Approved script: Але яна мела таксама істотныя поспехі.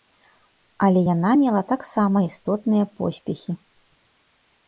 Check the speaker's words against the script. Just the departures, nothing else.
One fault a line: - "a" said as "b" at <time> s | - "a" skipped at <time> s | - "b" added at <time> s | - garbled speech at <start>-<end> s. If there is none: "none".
none